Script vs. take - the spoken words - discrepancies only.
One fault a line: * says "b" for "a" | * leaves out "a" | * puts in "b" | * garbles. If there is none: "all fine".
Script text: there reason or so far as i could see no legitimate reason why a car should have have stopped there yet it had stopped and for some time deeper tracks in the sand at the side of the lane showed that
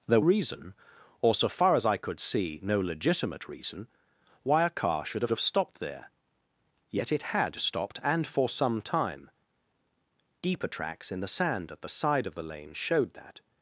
all fine